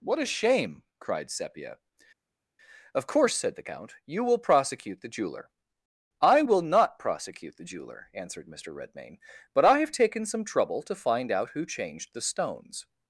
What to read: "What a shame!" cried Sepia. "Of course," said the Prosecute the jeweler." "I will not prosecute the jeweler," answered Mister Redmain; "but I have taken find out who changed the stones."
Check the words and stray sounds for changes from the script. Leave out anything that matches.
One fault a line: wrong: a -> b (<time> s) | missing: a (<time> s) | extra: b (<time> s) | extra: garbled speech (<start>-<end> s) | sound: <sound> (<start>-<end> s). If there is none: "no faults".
extra: Count you will (3.7 s)
extra: some trouble to (10.2 s)